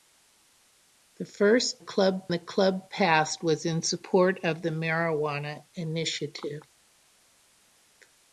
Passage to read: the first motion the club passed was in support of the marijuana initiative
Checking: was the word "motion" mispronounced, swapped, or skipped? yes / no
yes